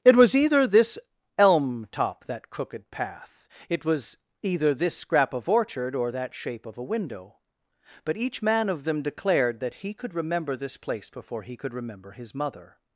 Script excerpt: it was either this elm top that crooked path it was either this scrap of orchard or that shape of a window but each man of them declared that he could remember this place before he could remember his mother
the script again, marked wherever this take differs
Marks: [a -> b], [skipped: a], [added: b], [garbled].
it was either this elm top that crooked path it was either this scrap of orchard or that shape of a window but each man of them declared that he could remember this place before he could remember his mother